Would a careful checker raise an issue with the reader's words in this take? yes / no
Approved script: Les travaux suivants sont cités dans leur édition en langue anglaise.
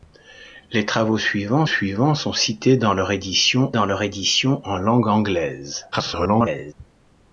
yes